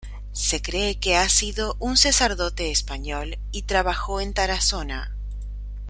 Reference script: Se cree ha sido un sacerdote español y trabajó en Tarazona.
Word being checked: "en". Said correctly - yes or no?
yes